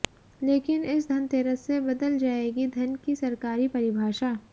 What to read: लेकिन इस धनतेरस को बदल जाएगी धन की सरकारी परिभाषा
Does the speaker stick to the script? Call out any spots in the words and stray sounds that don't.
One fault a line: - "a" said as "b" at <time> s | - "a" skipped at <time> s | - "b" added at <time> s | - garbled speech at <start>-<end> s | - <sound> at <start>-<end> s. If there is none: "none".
- "को" said as "से" at 1.6 s